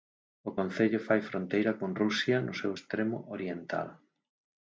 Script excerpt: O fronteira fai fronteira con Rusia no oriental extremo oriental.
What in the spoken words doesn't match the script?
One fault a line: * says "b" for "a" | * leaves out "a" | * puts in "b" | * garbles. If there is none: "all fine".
* says "concello" for "fronteira"
* says "seu" for "oriental"